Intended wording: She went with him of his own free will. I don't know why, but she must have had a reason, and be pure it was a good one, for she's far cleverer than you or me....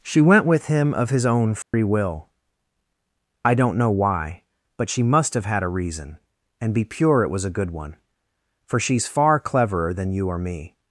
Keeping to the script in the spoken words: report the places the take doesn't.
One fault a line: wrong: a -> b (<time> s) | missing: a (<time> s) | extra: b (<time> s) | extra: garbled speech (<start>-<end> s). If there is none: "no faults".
no faults